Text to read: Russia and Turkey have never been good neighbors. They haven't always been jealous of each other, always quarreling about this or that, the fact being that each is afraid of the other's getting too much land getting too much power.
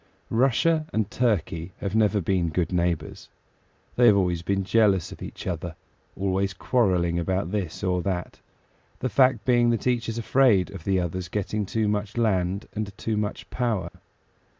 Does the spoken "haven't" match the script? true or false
false